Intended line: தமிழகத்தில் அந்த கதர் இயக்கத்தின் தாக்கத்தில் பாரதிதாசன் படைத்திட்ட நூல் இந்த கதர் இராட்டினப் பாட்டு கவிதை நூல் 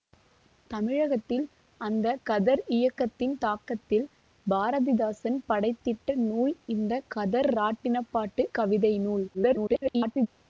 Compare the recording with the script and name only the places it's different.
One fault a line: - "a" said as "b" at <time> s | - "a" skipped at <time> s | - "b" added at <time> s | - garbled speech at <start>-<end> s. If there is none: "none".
- garbled speech at 9.3-10.3 s